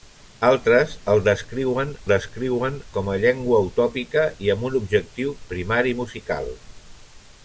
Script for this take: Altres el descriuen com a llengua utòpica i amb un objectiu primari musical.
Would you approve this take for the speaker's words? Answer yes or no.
no